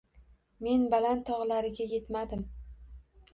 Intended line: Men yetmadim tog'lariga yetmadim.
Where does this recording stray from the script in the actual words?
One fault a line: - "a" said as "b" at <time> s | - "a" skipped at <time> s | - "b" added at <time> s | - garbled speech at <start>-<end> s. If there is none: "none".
- "yetmadim" said as "baland" at 0.9 s